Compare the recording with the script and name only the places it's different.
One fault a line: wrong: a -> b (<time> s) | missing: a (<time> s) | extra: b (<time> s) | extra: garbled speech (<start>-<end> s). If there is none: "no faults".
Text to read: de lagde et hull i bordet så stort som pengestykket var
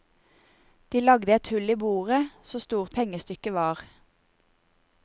missing: som (2.9 s)